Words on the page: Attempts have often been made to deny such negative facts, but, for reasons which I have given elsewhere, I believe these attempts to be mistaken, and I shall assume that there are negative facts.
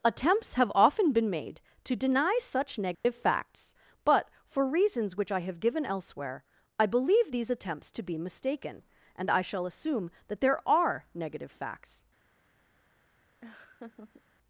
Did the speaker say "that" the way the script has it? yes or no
yes